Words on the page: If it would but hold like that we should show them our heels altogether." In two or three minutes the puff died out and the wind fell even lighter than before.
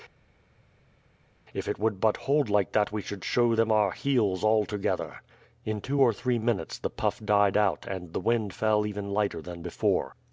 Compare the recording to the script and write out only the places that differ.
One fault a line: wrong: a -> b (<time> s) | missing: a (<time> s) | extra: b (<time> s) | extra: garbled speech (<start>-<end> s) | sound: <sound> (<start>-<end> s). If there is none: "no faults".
no faults